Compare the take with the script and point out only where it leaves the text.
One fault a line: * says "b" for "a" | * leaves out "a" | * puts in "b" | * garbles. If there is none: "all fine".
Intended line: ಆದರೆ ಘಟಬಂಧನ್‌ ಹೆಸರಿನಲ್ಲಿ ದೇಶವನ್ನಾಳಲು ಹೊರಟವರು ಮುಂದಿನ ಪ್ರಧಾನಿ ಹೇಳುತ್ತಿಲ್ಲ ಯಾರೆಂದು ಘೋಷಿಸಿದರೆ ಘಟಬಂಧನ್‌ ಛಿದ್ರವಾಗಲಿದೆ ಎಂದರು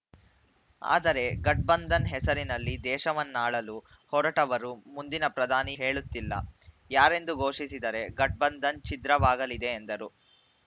all fine